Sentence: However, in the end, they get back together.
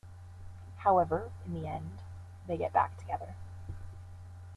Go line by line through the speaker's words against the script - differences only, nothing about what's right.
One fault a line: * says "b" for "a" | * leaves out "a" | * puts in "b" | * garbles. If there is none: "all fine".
all fine